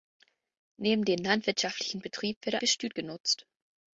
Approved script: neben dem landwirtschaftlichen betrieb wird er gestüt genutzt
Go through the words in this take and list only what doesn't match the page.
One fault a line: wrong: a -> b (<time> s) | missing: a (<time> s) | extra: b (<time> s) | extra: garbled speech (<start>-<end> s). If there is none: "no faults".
no faults